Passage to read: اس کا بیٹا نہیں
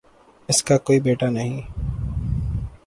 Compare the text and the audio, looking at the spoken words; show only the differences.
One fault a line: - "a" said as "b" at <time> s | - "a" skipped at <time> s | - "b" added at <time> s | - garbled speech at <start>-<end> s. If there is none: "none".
- "کوئی" added at 0.8 s